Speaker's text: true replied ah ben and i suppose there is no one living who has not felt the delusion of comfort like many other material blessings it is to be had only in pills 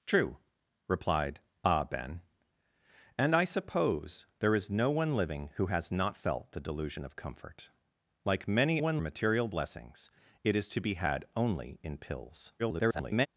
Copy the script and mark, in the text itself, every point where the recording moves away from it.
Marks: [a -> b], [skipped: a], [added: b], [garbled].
true replied ah ben and i suppose there is no one living who has not felt the delusion of comfort like many [other -> one] material blessings it is to be had only in pills [garbled]